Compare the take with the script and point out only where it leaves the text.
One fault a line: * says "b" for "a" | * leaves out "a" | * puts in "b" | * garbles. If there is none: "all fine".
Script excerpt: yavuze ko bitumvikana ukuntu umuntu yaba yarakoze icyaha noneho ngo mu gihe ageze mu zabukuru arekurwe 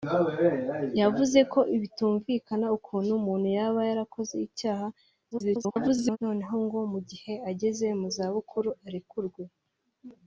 * garbles